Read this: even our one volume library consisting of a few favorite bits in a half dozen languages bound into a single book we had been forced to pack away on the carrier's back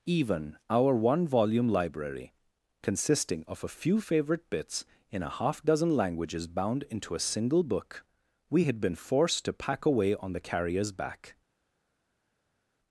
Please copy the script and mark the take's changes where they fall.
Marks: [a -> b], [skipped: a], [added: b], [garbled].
even our one volume library consisting of a few favorite bits in a half dozen languages bound into a single book we had been forced to pack away on the carrier's back